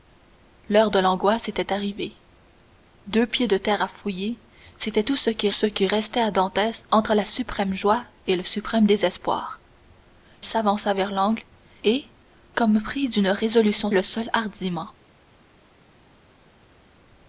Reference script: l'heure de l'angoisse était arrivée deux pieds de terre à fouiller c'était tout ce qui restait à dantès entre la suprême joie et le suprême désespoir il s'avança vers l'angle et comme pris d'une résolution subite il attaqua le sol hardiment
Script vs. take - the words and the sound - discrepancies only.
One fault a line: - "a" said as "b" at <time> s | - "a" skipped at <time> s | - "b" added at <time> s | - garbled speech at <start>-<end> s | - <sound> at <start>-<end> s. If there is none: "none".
- "ce qui" added at 5.5 s
- "il" skipped at 9.6 s
- "subite il attaqua" skipped at 13.9 s